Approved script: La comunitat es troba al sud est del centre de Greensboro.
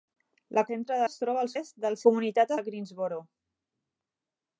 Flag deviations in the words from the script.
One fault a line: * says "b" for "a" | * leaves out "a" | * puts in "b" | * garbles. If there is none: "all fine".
* says "centre" for "comunitat"
* leaves out "sud"
* says "comunitat" for "centre"